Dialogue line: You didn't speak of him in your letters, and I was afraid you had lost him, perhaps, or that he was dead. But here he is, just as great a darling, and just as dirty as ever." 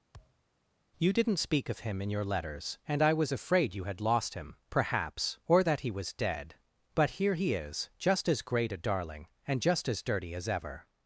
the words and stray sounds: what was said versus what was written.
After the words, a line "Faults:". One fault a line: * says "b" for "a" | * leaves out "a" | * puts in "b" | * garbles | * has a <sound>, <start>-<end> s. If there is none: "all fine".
You didn't speak of him in your letters, and I was afraid you had lost him, perhaps, or that he was dead. But here he is, just as great a darling, and just as dirty as ever."
Faults:
* has a thud, 0.1-0.4 s